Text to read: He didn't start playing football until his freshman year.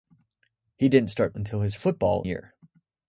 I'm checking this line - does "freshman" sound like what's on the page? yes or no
no